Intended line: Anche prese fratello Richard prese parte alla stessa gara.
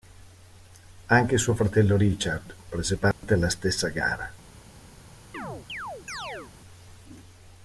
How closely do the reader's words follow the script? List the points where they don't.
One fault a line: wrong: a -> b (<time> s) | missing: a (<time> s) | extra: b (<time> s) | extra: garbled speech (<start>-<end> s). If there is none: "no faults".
wrong: prese -> suo (1.4 s)